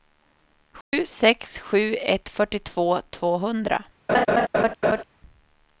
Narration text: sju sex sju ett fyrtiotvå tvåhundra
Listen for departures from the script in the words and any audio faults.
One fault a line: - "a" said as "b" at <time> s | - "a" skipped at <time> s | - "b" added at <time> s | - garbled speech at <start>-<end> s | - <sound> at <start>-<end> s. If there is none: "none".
- dropout at 0.8-0.9 s
- laugh at 4.1-5.0 s